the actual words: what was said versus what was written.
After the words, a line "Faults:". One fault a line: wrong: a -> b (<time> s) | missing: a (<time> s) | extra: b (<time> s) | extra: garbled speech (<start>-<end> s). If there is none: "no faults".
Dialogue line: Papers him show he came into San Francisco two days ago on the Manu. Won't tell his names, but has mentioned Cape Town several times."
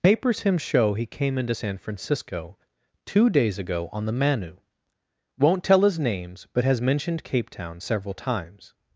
Papers him show he came into San Francisco two days ago on the Manu. Won't tell his names, but has mentioned Cape Town several times."
Faults:
no faults